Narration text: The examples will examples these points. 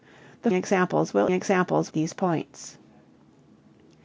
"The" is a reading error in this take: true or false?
false